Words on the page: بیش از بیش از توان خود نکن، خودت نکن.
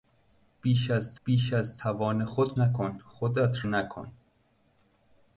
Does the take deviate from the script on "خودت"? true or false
false